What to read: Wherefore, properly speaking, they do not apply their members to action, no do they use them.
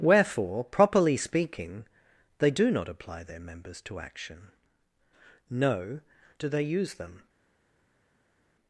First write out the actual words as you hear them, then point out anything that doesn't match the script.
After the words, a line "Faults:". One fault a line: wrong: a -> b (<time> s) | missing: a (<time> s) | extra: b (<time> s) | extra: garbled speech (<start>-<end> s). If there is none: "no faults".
Wherefore, properly speaking, they do not apply their members to action, no do they use them.
Faults:
no faults